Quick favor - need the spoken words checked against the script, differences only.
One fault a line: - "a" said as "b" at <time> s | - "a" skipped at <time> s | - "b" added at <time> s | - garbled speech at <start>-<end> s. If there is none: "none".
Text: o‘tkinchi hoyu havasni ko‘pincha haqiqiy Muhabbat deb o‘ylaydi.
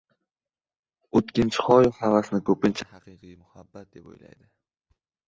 none